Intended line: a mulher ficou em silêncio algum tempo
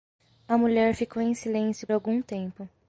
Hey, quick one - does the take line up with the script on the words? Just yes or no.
yes